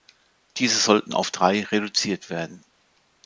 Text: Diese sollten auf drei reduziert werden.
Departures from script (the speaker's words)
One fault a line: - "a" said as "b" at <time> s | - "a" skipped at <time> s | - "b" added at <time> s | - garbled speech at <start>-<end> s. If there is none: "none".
none